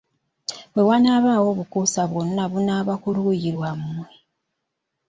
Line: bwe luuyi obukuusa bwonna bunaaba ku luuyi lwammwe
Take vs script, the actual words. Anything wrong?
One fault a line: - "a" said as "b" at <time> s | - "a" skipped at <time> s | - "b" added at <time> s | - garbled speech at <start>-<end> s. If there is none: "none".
- "luuyi" said as "wanaabaawo" at 0.9 s